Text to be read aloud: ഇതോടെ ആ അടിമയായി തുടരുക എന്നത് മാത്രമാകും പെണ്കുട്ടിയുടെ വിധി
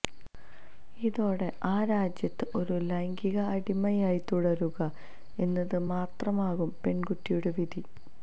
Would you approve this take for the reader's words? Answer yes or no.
no